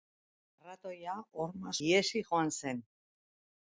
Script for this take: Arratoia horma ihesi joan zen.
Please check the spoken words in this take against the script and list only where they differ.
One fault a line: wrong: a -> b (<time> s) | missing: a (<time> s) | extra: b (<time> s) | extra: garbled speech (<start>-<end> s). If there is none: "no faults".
no faults